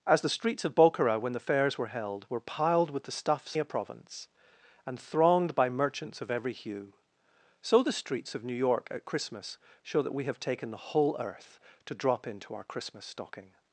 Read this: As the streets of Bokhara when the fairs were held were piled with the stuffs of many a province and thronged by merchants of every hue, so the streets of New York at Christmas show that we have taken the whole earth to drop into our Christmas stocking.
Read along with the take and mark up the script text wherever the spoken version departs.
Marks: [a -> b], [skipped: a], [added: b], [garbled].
As the streets of Bokhara when the fairs were held were piled with the stuffs [skipped: of many] a province and thronged by merchants of every hue, so the streets of New York at Christmas show that we have taken the whole earth to drop into our Christmas stocking.